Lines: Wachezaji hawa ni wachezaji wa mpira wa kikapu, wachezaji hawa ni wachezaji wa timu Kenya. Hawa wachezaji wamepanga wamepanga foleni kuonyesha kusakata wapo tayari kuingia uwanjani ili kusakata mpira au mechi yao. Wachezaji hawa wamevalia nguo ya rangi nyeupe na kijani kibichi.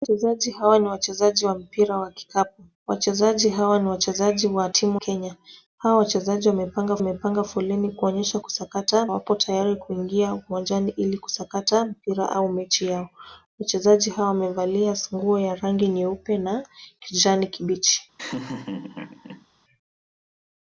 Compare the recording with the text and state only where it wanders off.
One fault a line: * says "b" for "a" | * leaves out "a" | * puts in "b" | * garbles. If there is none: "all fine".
all fine